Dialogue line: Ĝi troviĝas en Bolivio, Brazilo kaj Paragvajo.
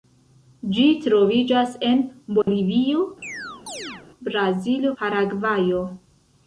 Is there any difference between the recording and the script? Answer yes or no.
yes